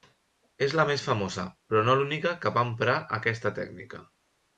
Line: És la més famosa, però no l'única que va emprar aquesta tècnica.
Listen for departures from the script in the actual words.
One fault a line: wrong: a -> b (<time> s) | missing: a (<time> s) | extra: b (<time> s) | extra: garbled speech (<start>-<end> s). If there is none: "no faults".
no faults